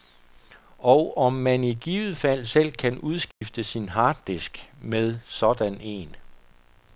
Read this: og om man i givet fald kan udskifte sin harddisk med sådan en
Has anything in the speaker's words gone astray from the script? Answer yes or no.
yes